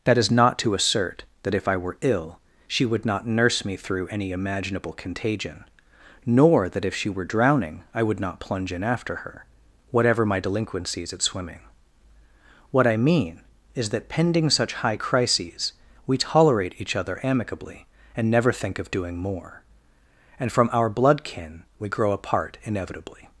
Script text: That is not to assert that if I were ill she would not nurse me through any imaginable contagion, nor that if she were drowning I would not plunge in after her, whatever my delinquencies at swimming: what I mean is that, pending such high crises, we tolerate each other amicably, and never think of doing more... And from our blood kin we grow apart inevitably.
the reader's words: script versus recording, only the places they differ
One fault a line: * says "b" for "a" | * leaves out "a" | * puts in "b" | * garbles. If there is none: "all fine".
all fine